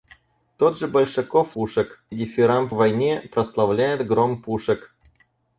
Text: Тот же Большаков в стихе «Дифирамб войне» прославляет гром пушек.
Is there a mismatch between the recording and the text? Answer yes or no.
yes